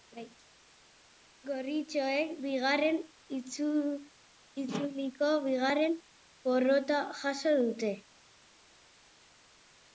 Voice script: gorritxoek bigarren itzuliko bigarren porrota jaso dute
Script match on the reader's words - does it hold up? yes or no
yes